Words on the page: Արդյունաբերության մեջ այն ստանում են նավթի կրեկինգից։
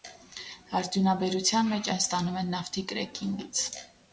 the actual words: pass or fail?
pass